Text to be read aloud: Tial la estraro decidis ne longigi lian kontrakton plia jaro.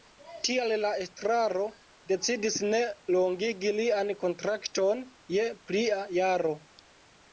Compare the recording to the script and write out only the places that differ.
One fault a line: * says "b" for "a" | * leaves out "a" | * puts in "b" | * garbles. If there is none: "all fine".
* puts in "je"